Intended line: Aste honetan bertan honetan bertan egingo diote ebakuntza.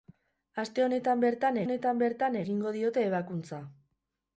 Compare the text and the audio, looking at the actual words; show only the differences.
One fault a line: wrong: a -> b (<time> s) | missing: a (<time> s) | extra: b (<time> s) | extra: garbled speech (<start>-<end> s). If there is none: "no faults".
no faults